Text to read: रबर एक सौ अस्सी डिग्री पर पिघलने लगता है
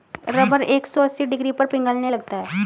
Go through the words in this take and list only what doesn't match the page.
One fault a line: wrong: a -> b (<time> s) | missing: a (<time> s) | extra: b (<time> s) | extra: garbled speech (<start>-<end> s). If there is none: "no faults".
no faults